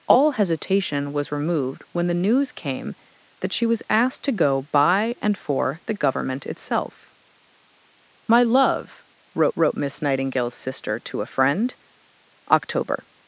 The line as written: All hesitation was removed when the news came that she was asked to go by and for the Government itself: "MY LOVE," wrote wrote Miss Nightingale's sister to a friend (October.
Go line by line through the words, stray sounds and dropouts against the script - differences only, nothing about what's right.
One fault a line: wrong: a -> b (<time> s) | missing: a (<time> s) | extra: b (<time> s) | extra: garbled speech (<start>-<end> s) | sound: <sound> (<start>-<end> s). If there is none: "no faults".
no faults